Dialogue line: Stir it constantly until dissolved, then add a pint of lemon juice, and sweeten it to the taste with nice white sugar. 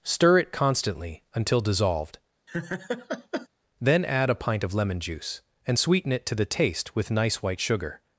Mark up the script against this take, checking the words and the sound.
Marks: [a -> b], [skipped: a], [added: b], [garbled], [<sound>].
Stir it constantly until dissolved, [laugh] then add a pint of lemon juice, and sweeten it to the taste with nice white sugar.